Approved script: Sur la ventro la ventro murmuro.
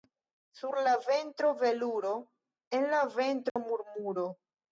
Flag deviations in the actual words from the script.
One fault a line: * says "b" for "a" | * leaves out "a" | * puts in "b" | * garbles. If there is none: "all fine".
* puts in "veluro en"